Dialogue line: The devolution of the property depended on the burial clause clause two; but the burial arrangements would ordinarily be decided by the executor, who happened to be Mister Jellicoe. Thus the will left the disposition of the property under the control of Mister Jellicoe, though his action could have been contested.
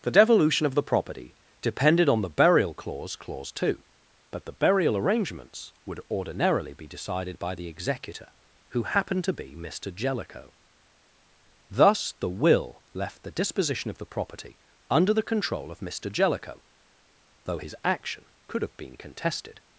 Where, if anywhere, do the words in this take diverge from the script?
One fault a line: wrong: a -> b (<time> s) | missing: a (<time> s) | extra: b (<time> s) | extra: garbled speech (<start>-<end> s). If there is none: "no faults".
no faults